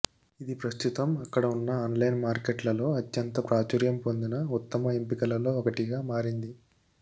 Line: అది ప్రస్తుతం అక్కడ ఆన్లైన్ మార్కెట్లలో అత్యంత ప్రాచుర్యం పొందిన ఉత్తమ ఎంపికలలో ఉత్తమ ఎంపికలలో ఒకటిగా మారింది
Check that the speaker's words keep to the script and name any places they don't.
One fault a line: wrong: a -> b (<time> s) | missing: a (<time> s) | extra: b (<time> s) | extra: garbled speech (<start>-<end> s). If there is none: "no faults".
wrong: అది -> ఇది (0.4 s)
extra: ఉన్న (1.5 s)
missing: ఉత్తమ ఎంపికలలో (5.5 s)